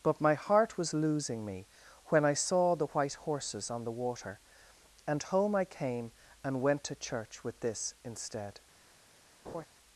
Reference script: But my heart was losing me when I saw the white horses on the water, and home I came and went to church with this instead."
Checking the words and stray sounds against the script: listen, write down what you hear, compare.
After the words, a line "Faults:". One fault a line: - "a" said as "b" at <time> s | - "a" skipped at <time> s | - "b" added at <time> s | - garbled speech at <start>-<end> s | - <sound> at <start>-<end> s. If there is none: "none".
But my heart was losing me when I saw the white horses on the water, and home I came and went to church with this instead."
Faults:
- laugh at 9.4-9.7 s